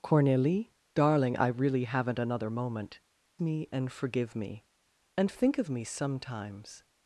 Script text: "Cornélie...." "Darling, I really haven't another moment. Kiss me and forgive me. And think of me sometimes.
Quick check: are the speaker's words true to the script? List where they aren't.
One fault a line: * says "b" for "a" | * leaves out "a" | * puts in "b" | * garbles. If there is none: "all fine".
* leaves out "Kiss"